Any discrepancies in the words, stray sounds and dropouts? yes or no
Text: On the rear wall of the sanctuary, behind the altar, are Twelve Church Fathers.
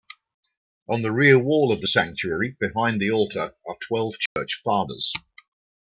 yes